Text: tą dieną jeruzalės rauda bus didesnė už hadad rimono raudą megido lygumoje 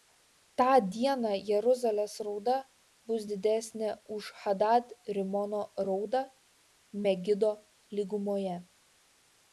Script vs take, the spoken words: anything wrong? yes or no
no